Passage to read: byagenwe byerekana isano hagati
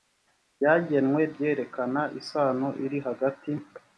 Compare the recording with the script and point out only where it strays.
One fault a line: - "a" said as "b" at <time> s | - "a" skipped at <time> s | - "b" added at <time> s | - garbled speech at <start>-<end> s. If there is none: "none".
- "iri" added at 2.9 s